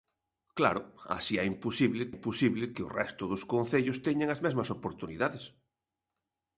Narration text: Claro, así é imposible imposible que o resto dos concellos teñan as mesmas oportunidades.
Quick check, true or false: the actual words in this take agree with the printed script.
true